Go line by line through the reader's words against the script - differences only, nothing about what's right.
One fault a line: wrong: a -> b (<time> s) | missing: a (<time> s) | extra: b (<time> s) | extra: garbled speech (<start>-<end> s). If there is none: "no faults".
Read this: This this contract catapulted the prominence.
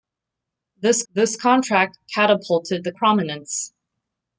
no faults